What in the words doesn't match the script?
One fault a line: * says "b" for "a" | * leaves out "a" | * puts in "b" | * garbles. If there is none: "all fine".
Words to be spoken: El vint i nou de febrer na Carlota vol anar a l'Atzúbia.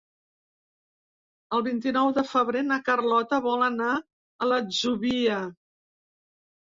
all fine